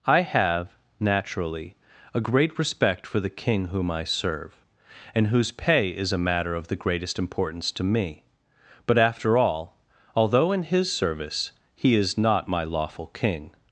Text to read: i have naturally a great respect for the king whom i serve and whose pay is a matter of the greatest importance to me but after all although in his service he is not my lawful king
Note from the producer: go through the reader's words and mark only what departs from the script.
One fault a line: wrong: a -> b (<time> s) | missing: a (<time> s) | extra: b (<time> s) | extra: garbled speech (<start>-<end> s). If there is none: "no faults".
no faults